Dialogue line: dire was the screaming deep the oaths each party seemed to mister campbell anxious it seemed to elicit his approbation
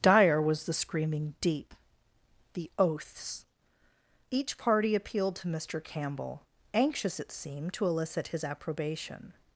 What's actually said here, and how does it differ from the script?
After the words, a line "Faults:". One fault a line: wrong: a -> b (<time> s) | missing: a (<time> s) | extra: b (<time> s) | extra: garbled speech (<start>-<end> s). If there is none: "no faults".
dire was the screaming deep the oaths each party appealed to mister campbell anxious it seemed to elicit his approbation
Faults:
wrong: seemed -> appealed (5.0 s)